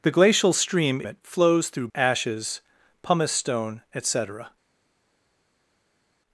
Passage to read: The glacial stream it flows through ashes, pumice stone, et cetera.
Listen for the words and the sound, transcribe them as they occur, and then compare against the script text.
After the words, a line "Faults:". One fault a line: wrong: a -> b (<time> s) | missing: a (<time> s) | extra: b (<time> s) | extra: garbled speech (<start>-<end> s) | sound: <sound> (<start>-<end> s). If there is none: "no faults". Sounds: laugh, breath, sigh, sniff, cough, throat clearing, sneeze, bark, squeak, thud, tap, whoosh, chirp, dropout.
The glacial stream it flows through ashes, pumice stone, et cetera.
Faults:
no faults